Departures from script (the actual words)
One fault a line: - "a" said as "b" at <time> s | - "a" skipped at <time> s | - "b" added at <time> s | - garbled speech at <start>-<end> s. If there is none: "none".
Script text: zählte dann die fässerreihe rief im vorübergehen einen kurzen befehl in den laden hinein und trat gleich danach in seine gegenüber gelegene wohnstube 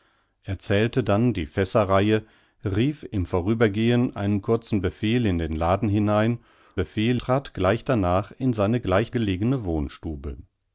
- "und" said as "befehl" at 6.8 s
- "gegenüber" said as "gleich" at 8.8 s